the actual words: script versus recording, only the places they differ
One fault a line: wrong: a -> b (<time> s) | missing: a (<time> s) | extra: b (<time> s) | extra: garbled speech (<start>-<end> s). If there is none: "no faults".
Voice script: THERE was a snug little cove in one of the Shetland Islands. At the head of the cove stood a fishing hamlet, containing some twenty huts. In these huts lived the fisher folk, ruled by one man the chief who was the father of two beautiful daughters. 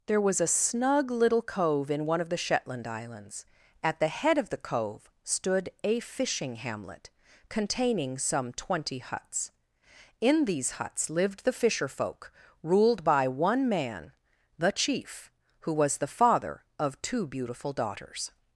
no faults